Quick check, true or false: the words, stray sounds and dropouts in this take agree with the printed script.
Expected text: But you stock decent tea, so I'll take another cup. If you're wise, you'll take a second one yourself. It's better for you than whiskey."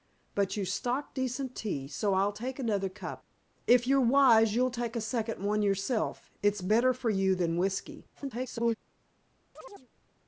false